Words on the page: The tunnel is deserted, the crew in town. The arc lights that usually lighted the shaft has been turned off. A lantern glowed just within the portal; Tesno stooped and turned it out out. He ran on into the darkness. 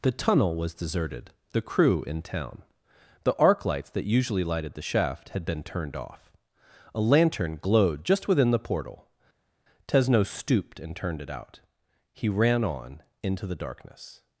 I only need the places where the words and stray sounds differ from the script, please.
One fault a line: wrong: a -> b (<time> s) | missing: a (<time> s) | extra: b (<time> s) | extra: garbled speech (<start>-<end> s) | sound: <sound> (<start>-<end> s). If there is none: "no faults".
wrong: is -> was (0.6 s)
wrong: has -> had (5.3 s)
missing: out (11.6 s)